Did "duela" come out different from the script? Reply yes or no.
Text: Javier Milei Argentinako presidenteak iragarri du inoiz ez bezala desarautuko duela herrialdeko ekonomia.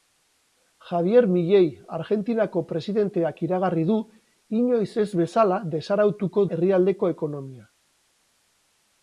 yes